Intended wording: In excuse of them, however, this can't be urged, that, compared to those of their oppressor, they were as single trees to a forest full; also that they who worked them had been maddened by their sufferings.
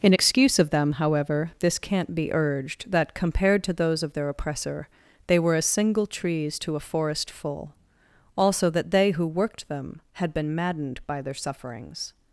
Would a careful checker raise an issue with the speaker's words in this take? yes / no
no